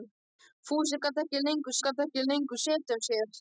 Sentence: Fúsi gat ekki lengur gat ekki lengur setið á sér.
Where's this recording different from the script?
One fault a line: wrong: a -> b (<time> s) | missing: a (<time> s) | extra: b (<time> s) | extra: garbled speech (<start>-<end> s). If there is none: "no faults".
no faults